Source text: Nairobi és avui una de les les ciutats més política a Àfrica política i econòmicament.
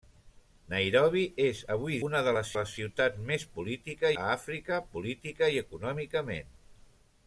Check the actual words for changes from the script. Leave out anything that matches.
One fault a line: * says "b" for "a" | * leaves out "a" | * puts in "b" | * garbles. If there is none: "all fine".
all fine